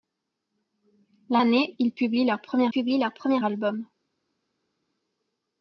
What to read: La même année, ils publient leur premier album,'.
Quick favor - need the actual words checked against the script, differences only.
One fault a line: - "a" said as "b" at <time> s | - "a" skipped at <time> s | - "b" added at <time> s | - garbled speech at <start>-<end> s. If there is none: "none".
- "même" skipped at 1.4 s
- "publient leur premier" added at 2.7 s